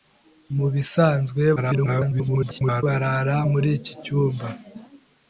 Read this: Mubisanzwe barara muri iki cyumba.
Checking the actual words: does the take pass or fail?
fail